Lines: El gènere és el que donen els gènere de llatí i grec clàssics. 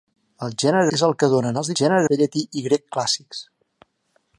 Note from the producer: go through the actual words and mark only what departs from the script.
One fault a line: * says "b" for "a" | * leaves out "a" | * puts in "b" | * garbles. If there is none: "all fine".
all fine